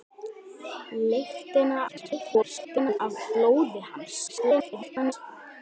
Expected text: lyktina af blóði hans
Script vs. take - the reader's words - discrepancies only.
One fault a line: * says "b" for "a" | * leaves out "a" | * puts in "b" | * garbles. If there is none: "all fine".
* garbles
* garbles